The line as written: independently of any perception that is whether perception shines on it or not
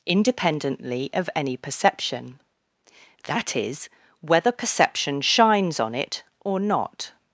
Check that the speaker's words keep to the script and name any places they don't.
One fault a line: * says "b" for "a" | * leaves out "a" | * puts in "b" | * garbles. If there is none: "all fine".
all fine